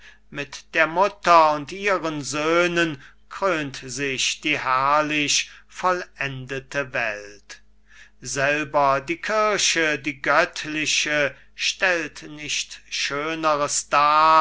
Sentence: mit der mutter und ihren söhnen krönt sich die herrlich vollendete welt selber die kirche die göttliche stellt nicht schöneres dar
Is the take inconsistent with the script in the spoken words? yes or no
no